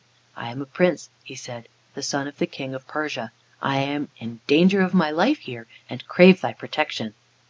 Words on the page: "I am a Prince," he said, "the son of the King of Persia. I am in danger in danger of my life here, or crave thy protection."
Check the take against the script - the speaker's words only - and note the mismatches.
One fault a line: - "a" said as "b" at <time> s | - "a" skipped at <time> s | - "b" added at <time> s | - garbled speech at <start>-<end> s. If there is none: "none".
- "in danger" skipped at 4.8 s
- "or" said as "and" at 5.9 s